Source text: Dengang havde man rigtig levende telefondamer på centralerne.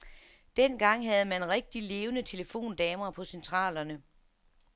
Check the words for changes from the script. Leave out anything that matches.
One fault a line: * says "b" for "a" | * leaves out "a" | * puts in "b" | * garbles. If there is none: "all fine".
all fine